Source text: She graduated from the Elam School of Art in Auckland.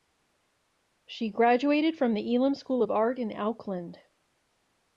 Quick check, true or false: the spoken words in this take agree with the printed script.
true